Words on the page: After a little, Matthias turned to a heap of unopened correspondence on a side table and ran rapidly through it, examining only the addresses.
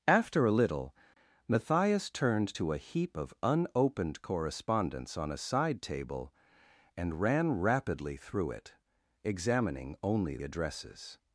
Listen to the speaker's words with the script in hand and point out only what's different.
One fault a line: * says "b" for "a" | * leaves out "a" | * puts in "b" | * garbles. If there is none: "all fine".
* leaves out "the"